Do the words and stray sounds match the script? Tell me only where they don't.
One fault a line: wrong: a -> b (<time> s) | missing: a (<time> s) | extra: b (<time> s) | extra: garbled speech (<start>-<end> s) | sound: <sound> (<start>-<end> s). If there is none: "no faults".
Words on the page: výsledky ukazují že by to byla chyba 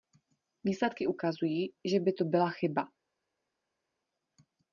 no faults